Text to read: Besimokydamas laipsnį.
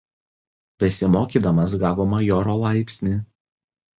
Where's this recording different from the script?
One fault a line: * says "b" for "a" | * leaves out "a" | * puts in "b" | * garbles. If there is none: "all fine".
* puts in "gavo majoro"